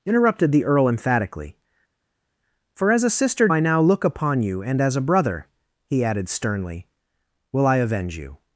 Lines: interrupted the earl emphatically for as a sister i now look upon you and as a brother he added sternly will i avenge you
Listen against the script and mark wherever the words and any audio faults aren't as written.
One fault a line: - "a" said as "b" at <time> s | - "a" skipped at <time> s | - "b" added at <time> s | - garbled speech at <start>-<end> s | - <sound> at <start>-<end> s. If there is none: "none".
none